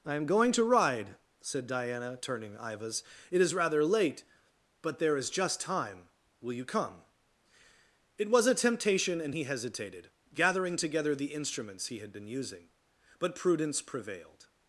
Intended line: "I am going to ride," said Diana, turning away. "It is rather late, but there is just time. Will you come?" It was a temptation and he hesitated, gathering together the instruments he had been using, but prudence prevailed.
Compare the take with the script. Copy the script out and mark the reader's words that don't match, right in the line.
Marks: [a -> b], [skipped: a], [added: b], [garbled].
"I am going to ride," said Diana, turning [away. -> ivas] "It is rather late, but there is just time. Will you come?" It was a temptation and he hesitated, gathering together the instruments he had been using, but prudence prevailed.